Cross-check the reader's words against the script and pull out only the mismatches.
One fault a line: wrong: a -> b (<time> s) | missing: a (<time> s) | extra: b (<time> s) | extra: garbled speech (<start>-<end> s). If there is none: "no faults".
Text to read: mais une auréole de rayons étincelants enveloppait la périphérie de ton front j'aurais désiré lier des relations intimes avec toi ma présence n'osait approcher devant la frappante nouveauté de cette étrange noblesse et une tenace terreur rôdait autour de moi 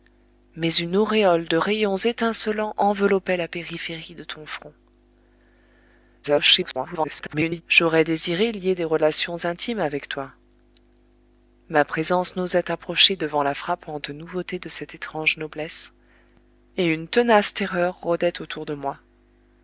extra: garbled speech (6.2-7.6 s)